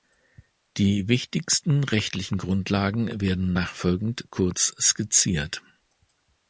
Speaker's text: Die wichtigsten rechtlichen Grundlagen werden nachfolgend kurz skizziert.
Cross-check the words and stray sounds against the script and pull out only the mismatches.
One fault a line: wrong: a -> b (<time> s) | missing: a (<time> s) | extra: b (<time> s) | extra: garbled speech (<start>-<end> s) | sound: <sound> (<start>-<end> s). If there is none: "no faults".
no faults